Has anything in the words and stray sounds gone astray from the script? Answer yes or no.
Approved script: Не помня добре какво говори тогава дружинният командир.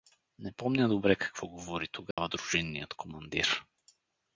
yes